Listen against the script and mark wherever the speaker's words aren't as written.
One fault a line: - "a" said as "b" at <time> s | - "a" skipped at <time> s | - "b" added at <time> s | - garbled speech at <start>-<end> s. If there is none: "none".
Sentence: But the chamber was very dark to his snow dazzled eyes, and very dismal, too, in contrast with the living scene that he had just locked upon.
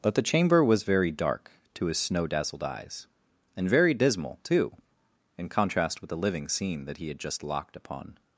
none